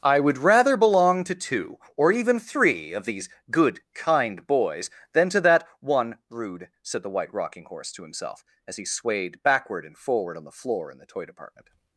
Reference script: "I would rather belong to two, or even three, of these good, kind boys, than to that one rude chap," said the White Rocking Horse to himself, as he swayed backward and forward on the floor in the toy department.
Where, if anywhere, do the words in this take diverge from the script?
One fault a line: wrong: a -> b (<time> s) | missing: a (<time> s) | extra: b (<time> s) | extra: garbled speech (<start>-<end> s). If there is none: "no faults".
missing: chap (6.7 s)